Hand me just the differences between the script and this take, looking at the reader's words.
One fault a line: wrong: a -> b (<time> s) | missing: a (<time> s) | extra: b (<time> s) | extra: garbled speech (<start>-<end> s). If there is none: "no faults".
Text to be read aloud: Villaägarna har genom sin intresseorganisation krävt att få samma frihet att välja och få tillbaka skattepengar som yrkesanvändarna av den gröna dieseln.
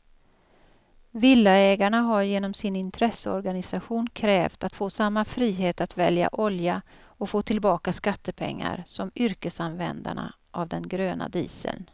extra: olja (6.3 s)